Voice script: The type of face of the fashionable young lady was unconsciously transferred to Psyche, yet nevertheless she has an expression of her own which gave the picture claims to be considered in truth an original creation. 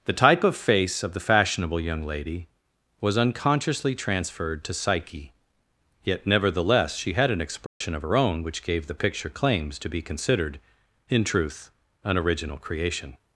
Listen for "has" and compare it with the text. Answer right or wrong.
wrong